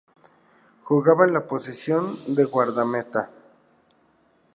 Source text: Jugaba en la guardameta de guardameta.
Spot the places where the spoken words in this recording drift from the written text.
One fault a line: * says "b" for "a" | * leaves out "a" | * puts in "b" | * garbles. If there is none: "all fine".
* says "posición" for "guardameta"